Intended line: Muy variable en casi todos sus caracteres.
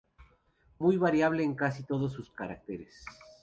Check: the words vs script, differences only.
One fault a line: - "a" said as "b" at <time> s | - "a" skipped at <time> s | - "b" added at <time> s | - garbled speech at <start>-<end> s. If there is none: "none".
none